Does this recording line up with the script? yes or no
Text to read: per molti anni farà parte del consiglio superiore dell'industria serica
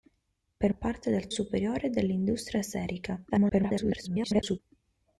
no